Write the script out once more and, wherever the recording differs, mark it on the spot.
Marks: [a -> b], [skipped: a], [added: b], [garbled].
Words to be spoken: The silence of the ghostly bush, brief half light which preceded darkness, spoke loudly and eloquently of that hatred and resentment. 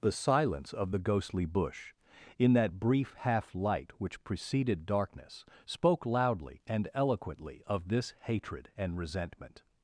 The silence of the ghostly bush, [added: in that] brief half light which preceded darkness, spoke loudly and eloquently of [that -> this] hatred and resentment.